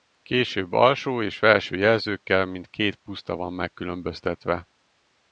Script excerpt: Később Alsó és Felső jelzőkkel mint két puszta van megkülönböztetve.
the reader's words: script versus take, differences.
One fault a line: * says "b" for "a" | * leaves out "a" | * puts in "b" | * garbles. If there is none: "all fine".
all fine